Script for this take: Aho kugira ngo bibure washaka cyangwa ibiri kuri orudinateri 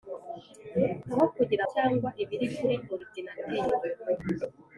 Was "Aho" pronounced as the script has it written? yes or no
yes